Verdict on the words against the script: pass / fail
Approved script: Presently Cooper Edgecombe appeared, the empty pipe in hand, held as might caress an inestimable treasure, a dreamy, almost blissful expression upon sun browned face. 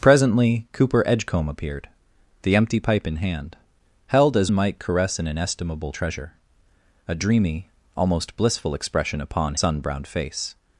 pass